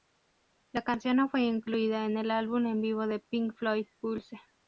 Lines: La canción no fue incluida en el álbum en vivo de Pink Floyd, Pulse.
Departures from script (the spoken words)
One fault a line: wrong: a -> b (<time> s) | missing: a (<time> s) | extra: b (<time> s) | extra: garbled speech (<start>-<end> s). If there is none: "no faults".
no faults